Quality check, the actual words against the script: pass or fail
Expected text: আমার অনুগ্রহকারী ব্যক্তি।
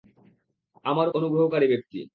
pass